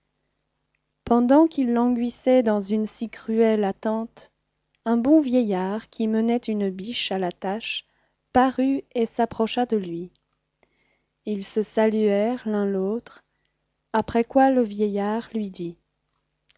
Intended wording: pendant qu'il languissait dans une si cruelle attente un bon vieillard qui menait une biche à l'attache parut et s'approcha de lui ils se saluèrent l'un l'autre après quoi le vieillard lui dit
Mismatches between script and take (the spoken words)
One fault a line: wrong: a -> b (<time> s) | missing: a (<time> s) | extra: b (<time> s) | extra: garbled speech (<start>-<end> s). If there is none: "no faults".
no faults